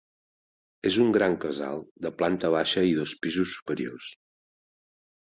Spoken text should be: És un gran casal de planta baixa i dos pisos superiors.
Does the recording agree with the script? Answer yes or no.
yes